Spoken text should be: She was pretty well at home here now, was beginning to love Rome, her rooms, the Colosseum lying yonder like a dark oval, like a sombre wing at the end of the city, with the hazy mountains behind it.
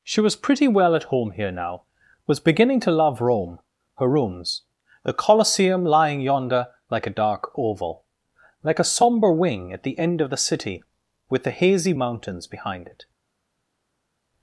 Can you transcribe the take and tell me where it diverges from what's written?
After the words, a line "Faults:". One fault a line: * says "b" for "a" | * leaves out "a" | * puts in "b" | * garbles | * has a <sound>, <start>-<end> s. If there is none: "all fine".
She was pretty well at home here now, was beginning to love Rome, her rooms, the Colosseum lying yonder like a dark oval, like a sombre wing at the end of the city, with the hazy mountains behind it.
Faults:
all fine